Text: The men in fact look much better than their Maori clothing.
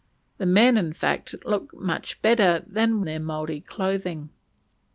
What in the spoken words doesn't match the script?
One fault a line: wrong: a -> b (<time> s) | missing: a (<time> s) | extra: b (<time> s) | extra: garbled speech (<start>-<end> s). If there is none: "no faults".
no faults